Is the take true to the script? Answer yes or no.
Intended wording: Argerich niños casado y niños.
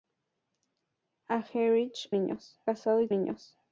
yes